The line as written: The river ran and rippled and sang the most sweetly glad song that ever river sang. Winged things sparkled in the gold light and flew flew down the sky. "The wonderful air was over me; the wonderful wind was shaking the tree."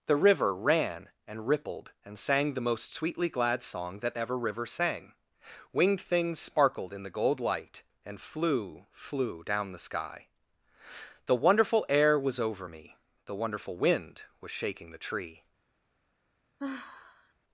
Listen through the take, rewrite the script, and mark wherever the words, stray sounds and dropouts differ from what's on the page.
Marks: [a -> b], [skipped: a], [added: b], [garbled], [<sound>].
The river ran and rippled and sang the most sweetly glad song that ever river sang. Winged things sparkled in the gold light and flew flew down the sky. "The wonderful air was over me; the wonderful wind was shaking the tree." [sigh]